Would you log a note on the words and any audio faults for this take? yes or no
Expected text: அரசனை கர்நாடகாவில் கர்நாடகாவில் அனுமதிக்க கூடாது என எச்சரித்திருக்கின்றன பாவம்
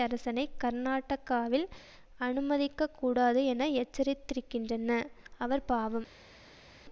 yes